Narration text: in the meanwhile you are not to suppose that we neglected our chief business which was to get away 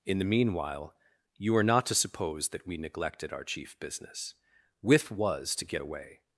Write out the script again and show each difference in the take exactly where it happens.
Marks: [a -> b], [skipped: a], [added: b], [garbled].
in the meanwhile you are not to suppose that we neglected our chief business [which -> with] was to get away